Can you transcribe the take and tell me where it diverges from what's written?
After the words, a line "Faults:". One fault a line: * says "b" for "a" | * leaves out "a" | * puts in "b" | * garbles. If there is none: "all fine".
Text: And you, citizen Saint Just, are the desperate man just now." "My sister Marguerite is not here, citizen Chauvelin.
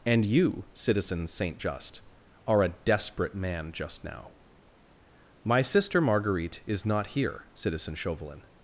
And you, citizen Saint Just, are a desperate man just now." "My sister Marguerite is not here, citizen Chauvelin.
Faults:
* says "a" for "the"